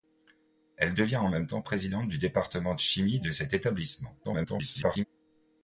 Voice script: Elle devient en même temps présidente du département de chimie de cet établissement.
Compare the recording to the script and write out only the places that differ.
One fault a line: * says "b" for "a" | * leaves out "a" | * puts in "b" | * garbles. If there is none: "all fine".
* garbles